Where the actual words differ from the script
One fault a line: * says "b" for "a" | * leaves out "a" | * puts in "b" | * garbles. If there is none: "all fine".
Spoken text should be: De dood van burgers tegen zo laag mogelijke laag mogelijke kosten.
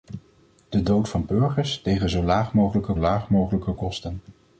all fine